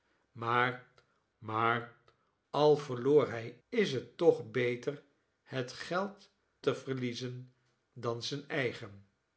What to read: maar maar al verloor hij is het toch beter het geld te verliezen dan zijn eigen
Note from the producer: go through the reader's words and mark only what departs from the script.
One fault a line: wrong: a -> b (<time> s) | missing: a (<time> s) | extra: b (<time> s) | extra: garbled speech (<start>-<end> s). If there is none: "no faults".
no faults